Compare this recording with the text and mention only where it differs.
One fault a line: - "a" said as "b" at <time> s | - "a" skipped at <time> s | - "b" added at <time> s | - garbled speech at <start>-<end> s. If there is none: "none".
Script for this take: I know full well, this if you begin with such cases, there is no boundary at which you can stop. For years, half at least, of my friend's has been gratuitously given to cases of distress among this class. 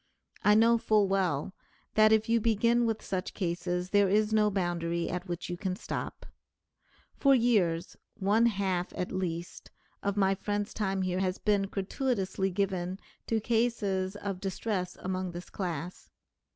- "this" said as "that" at 1.9 s
- "one" added at 8.1 s
- "time here" added at 10.7 s